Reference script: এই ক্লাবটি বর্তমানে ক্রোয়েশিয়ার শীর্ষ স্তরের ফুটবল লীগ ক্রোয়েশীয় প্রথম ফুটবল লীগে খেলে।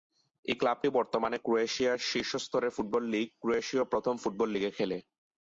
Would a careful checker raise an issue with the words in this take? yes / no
no